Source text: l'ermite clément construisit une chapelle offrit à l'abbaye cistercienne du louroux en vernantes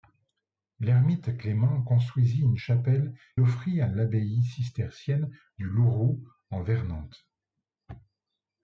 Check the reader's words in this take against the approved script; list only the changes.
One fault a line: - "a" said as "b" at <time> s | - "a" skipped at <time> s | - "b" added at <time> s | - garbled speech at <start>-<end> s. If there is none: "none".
none